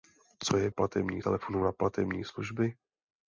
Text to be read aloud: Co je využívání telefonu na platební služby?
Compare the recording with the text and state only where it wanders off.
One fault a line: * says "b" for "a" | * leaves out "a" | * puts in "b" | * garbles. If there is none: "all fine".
* says "platební" for "využívání"